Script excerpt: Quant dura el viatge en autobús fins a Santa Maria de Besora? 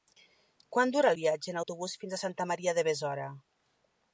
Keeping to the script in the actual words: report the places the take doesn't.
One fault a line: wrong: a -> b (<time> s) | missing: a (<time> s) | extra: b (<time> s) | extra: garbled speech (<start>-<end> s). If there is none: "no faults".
no faults